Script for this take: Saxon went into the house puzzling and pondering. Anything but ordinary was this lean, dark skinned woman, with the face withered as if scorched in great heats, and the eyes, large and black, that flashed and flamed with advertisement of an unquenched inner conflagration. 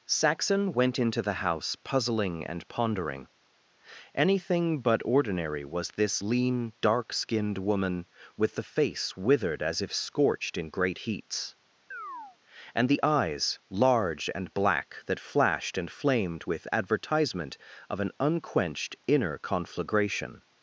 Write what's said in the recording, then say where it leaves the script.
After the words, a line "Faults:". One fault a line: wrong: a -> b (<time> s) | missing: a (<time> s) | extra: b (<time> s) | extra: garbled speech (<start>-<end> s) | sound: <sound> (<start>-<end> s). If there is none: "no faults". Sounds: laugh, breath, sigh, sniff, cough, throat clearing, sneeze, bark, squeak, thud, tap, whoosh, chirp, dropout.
Saxon went into the house puzzling and pondering. Anything but ordinary was this lean, dark skinned woman, with the face withered as if scorched in great heats, and the eyes, large and black, that flashed and flamed with advertisement of an unquenched inner conflagration.
Faults:
sound: chirp (11.9-12.4 s)